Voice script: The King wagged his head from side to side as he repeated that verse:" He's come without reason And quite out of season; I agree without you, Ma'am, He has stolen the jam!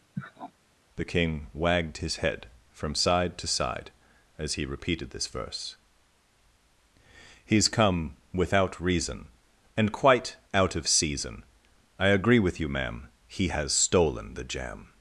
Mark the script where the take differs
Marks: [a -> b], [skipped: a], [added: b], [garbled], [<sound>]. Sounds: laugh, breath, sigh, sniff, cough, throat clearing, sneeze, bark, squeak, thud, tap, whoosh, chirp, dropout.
[sniff] The King wagged his head from side to side as he repeated [that -> this] verse:" He's come without reason And quite out of season; I agree [without -> with] you, Ma'am, He has stolen the jam!